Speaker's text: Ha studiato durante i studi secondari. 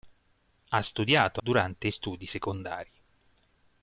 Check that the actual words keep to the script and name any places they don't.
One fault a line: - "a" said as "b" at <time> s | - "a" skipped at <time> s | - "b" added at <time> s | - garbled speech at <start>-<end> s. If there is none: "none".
none